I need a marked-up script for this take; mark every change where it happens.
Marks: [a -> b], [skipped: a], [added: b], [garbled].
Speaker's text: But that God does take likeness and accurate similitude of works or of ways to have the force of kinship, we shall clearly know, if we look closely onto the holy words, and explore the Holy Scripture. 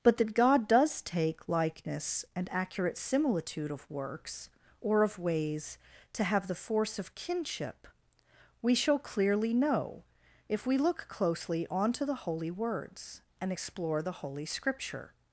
But that God does take likeness and accurate similitude of works or of ways to have the force of kinship, we shall clearly know, if we look closely onto the holy words, and explore the Holy Scripture.